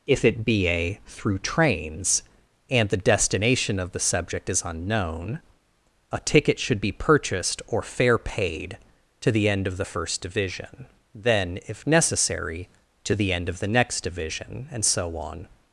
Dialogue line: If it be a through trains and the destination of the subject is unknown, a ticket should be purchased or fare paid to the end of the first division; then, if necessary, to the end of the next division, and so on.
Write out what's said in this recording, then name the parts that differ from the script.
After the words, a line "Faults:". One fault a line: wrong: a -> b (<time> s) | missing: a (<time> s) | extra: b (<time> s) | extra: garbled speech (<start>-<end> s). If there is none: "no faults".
If it be a through trains and the destination of the subject is unknown, a ticket should be purchased or fare paid to the end of the first division; then, if necessary, to the end of the next division, and so on.
Faults:
no faults